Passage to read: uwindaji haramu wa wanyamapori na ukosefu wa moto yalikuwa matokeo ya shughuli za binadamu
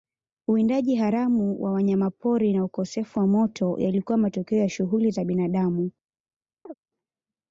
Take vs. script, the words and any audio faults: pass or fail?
fail